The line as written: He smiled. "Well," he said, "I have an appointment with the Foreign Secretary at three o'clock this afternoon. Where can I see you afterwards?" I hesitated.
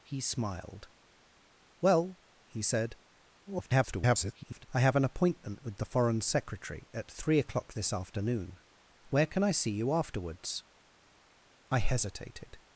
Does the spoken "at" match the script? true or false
true